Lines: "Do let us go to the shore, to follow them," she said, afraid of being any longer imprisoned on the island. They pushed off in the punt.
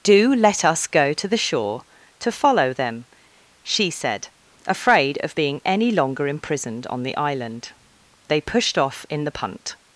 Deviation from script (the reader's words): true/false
false